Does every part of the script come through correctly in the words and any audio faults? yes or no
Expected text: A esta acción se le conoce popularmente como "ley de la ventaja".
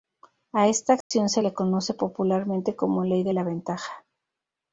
no